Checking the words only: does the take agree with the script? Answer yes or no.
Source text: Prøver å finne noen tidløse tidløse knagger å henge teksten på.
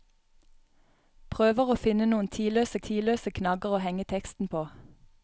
yes